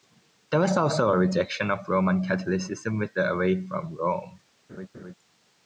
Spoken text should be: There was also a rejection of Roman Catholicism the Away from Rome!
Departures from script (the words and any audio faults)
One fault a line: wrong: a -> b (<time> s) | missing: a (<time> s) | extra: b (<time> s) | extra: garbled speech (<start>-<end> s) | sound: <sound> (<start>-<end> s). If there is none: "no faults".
extra: with (3.0 s)
sound: laugh (4.7-5.1 s)